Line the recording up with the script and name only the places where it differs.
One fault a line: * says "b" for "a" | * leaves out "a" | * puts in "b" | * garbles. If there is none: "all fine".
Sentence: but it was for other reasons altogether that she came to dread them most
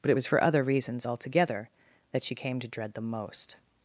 all fine